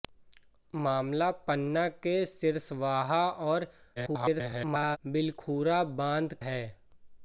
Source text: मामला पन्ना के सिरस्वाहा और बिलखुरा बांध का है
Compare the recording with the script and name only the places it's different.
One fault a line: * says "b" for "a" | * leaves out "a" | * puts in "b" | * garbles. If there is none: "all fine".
* garbles
* leaves out "का"